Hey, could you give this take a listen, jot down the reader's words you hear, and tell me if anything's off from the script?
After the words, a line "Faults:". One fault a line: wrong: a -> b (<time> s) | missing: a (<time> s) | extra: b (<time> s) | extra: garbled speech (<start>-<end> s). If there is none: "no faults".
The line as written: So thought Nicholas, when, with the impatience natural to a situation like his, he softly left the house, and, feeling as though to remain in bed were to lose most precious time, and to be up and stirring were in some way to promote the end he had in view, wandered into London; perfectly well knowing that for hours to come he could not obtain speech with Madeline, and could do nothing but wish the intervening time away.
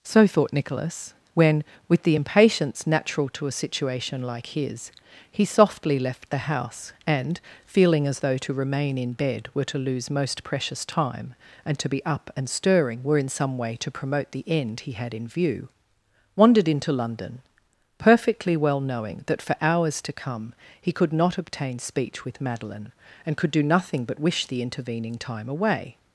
So thought Nicholas, when, with the impatience natural to a situation like his, he softly left the house, and, feeling as though to remain in bed were to lose most precious time, and to be up and stirring were in some way to promote the end he had in view, wandered into London; perfectly well knowing that for hours to come he could not obtain speech with Madeline, and could do nothing but wish the intervening time away.
Faults:
no faults